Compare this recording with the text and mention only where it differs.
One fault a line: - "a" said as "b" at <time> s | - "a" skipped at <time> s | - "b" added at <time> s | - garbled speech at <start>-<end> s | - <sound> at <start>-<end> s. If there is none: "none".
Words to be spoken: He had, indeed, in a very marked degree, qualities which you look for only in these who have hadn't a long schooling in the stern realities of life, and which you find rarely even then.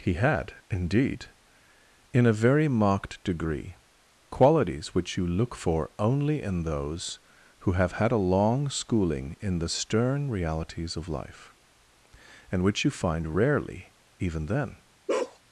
- "these" said as "those" at 6.6 s
- "hadn't" said as "had" at 7.9 s
- bark at 15.1-15.4 s